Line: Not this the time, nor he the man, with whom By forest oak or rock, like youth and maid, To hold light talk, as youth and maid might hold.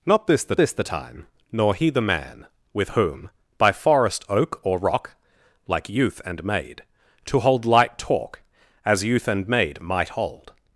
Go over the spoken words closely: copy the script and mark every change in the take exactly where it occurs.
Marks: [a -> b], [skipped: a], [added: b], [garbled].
Not this the [added: this the] time, nor he the man, with whom By forest oak or rock, like youth and maid, To hold light talk, as youth and maid might hold.